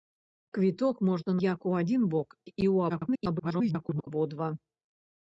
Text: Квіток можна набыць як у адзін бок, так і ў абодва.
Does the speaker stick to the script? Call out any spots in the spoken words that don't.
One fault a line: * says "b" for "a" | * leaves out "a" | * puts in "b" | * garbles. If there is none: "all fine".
* leaves out "набыць"
* leaves out "так"
* garbles